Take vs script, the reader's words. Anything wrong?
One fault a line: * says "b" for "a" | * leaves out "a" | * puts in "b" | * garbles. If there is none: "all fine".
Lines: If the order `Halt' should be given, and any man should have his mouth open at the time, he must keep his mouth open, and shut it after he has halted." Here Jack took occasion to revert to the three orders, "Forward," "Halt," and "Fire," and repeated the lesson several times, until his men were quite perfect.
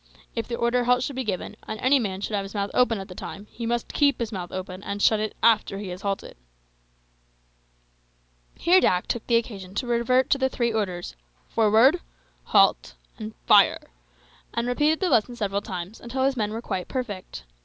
all fine